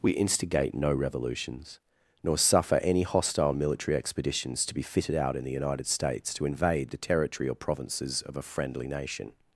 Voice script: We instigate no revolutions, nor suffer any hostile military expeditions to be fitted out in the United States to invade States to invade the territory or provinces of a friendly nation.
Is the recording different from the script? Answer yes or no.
yes